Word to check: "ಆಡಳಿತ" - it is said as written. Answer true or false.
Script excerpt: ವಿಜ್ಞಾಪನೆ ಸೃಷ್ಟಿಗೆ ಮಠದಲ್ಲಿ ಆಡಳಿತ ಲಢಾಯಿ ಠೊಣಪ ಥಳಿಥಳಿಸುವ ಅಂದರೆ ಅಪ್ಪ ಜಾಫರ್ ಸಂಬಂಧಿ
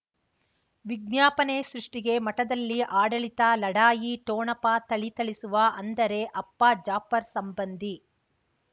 true